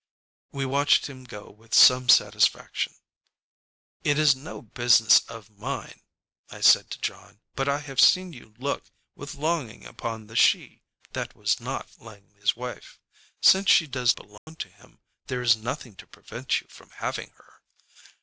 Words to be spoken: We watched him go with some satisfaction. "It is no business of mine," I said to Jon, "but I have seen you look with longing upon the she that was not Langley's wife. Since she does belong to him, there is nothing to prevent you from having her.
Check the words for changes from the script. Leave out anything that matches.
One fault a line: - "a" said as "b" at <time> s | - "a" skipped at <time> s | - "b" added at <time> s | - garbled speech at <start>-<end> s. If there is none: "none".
none